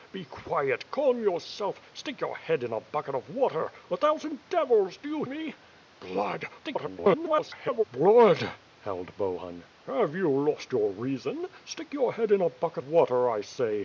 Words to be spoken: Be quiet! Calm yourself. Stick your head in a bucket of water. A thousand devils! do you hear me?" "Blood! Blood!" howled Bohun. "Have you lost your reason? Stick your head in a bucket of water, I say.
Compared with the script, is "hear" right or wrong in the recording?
wrong